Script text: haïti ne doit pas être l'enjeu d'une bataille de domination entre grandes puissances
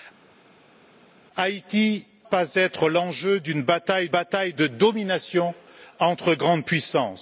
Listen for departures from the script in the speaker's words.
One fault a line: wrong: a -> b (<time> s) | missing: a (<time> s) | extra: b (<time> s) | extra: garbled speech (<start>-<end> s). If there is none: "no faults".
missing: ne doit (2.0 s)
extra: bataille (4.1 s)